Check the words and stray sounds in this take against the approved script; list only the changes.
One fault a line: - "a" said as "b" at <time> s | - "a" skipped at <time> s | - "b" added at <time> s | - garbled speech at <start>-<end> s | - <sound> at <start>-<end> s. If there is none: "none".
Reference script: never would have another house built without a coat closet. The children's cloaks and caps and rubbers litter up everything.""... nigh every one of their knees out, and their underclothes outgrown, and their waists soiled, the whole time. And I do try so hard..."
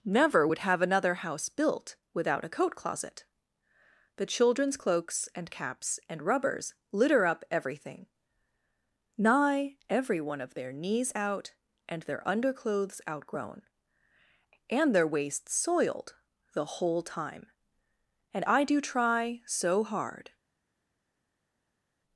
none